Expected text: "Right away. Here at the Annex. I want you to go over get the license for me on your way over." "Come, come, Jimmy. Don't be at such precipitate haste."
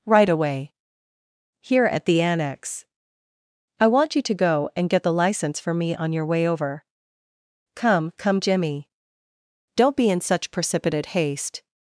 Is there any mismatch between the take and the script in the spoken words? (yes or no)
yes